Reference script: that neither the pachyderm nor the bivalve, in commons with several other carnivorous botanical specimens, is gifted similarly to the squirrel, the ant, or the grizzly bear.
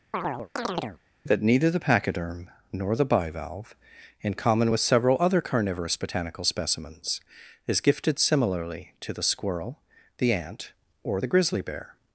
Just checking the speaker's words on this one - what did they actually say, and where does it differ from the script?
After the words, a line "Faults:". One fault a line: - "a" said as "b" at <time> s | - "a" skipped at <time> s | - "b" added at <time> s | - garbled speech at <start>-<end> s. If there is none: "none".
that neither the pachyderm nor the bivalve, in common with several other carnivorous botanical specimens, is gifted similarly to the squirrel, the ant, or the grizzly bear.
Faults:
- "commons" said as "common" at 4.3 s